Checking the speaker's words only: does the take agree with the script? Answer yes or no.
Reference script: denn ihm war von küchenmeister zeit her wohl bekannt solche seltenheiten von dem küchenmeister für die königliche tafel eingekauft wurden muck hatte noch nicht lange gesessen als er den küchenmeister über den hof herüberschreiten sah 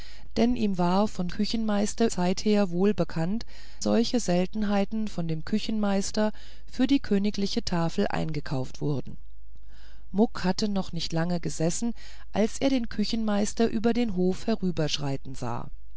yes